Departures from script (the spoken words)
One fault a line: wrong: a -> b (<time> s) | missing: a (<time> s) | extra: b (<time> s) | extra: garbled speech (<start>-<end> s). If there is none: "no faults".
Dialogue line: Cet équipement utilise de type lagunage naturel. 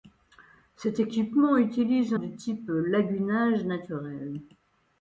no faults